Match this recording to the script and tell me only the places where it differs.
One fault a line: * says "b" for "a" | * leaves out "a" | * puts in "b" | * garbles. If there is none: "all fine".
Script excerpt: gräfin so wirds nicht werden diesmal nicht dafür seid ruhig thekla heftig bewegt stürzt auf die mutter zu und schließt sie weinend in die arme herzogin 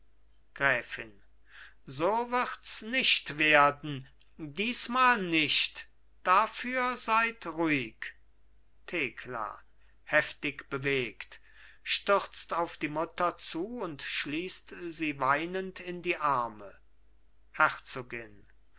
all fine